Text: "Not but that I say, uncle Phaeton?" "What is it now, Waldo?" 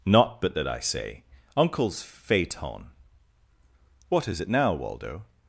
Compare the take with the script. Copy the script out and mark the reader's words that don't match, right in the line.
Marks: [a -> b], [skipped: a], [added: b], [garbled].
"Not but that I say, [uncle -> uncles] Phaeton?" "What is it now, Waldo?"